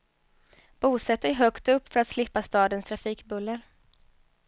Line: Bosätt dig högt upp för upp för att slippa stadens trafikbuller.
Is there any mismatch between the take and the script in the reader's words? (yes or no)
yes